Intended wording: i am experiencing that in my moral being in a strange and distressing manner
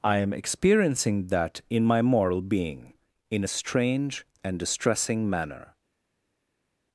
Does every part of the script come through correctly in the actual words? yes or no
yes